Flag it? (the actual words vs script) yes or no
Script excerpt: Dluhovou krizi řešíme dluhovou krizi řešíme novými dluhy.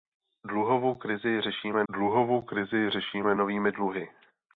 no